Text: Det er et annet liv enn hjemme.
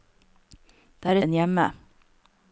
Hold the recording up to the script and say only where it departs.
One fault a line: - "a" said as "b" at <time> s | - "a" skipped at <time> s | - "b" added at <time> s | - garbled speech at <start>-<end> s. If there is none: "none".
- "et annet liv" skipped at 1.2 s